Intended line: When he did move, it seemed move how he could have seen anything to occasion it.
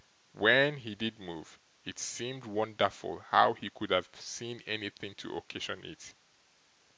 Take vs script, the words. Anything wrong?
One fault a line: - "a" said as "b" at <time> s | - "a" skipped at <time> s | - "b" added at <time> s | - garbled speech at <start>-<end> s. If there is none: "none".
- "move" said as "wonderful" at 2.4 s